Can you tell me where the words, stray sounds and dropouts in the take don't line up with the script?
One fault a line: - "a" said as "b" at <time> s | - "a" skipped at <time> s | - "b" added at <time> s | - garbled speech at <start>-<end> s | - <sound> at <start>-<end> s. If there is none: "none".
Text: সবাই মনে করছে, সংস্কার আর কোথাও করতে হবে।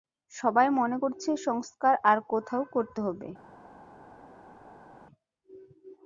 none